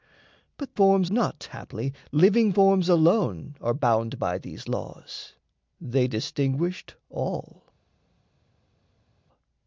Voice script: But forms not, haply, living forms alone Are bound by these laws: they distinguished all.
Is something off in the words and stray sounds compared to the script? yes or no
no